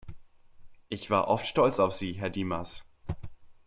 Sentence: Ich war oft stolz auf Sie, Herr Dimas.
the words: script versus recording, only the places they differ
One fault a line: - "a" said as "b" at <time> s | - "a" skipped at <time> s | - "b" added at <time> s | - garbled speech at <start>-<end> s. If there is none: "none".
none